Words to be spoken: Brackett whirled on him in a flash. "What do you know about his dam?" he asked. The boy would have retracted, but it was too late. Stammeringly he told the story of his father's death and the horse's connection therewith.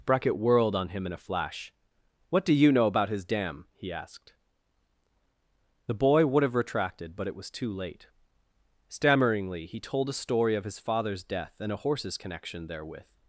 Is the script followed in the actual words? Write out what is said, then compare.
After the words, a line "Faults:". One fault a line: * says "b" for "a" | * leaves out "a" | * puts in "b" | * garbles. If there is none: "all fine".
Brackett whirled on him in a flash. "What do you know about his dam?" he asked. The boy would have retracted, but it was too late. Stammeringly he told a story of his father's death and a horse's connection therewith.
Faults:
* says "a" for "the"
* says "a" for "the"